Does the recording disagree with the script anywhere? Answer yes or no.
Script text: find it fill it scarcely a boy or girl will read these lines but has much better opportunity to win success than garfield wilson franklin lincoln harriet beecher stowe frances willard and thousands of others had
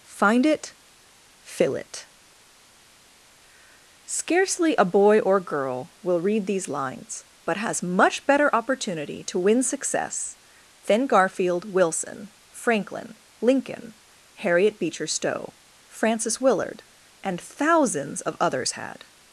no